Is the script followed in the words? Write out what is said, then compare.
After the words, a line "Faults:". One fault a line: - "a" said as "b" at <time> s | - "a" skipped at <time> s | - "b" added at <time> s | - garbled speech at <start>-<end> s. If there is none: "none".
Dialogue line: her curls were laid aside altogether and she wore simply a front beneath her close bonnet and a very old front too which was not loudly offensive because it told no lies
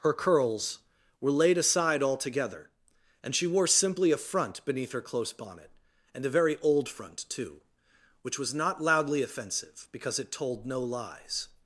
her curls were laid aside altogether and she wore simply a front beneath her close bonnet and a very old front too which was not loudly offensive because it told no lies
Faults:
none